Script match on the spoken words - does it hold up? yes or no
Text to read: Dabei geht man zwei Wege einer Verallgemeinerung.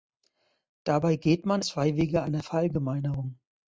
yes